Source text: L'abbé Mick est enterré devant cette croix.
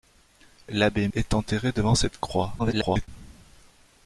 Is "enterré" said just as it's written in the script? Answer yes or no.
yes